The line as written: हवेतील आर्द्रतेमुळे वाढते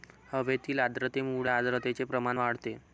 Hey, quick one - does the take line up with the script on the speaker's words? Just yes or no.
no